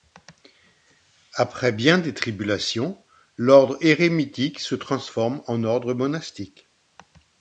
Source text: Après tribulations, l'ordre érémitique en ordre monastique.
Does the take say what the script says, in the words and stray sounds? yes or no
no